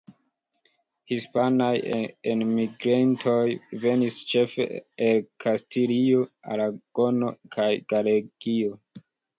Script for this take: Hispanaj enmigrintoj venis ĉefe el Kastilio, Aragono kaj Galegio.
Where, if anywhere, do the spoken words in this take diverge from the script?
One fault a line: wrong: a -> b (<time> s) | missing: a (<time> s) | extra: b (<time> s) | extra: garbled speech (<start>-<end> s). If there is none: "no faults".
no faults